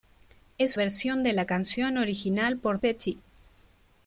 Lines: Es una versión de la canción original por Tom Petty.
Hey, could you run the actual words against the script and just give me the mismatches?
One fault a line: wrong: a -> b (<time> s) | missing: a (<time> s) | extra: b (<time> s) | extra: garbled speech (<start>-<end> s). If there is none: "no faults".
missing: una (0.8 s)
missing: Tom (2.8 s)